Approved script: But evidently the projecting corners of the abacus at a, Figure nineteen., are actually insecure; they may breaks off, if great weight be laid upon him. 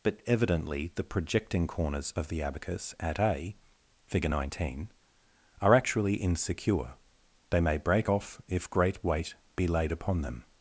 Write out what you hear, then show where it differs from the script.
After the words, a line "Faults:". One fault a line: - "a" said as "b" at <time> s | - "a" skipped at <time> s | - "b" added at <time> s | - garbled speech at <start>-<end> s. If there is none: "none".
But evidently the projecting corners of the abacus at a, Figure nineteen., are actually insecure; they may break off, if great weight be laid upon them.
Faults:
- "breaks" said as "break" at 7.8 s
- "him" said as "them" at 10.2 s